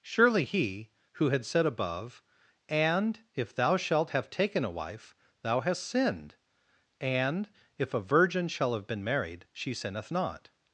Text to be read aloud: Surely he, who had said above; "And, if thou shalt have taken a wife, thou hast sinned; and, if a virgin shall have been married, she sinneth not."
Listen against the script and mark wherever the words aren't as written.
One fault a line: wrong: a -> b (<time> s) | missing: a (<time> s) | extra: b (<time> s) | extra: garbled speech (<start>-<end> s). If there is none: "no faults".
no faults